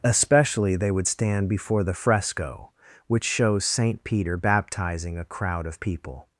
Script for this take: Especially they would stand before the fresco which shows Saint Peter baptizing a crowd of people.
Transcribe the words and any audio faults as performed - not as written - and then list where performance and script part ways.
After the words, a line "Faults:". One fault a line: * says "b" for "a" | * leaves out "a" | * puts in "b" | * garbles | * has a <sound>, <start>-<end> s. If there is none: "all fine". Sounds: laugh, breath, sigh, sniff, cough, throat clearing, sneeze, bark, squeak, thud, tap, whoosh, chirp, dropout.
Especially they would stand before the fresco which shows Saint Peter baptizing a crowd of people.
Faults:
all fine